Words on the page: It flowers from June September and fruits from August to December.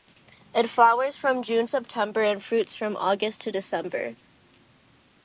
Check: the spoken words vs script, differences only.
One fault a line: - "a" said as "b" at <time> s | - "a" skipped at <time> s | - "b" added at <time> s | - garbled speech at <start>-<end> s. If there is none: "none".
none